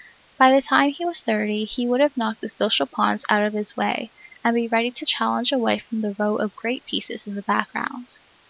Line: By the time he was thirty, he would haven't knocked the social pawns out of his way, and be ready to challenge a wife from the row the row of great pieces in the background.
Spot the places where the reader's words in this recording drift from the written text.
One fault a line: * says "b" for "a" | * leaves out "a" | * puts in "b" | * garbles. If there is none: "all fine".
* says "have" for "haven't"
* leaves out "the row"